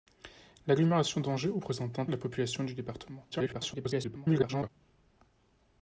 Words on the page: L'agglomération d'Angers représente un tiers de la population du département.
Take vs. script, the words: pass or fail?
fail